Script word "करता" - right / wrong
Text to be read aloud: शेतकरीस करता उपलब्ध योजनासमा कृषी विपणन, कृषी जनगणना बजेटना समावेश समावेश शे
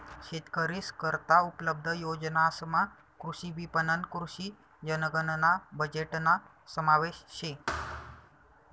right